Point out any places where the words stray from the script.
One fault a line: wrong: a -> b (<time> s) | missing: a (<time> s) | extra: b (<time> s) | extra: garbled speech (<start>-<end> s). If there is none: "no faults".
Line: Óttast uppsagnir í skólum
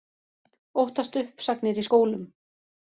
no faults